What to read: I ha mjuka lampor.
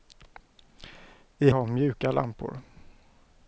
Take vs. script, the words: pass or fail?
pass